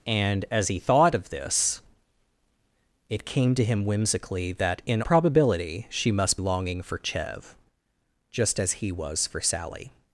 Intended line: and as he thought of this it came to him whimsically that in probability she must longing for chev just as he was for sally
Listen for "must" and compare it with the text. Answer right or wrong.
right